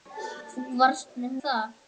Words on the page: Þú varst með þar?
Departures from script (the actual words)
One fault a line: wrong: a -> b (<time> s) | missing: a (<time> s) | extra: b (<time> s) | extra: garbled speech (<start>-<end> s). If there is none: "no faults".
no faults